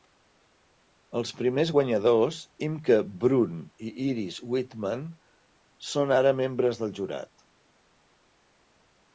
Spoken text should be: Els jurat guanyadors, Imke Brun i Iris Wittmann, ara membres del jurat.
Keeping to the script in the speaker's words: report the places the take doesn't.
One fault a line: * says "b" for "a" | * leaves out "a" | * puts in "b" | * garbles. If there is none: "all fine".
* says "primers" for "jurat"
* puts in "són"